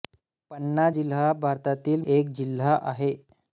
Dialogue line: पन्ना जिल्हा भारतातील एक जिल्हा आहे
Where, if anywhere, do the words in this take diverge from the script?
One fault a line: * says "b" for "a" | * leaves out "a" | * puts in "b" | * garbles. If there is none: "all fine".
all fine